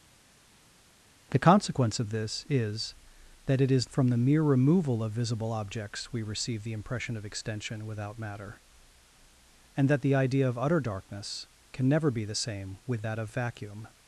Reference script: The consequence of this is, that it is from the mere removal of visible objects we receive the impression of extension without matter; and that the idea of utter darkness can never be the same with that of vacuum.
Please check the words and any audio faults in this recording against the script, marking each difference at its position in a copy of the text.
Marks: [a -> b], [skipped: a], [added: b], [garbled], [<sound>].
The consequence of this is, that it is from the mere removal of visible objects we receive the impression of extension without matter; and that the idea of utter darkness can never be the same with that of vacuum.